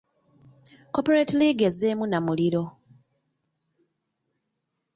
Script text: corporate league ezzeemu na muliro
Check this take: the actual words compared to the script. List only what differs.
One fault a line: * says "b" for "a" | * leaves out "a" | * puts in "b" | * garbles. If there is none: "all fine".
all fine